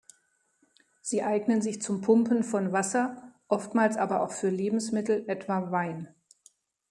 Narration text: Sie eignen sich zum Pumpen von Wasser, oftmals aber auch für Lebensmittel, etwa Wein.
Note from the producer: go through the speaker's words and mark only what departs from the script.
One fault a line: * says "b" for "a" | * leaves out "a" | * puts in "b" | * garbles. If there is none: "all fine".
all fine